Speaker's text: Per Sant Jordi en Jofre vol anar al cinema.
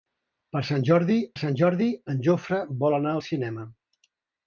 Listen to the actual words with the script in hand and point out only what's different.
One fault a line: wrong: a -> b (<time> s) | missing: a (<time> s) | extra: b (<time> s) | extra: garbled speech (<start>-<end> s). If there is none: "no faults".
extra: Sant Jordi (1.4 s)